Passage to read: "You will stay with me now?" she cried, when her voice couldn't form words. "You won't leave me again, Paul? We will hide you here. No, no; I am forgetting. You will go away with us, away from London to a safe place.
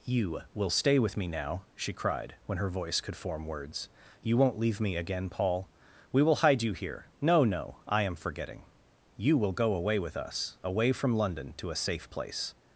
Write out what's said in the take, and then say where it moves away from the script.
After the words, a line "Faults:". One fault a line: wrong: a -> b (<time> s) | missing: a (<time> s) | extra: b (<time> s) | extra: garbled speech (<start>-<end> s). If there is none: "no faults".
"You will stay with me now?" she cried, when her voice could form words. "You won't leave me again, Paul? We will hide you here. No, no; I am forgetting. You will go away with us, away from London to a safe place.
Faults:
wrong: couldn't -> could (3.0 s)